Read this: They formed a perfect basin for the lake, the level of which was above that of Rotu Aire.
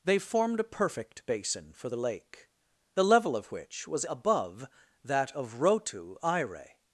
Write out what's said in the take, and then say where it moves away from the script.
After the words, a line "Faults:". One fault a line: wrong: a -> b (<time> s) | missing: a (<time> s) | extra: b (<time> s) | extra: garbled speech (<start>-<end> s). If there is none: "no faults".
They formed a perfect basin for the lake, the level of which was above that of Rotu Aire.
Faults:
no faults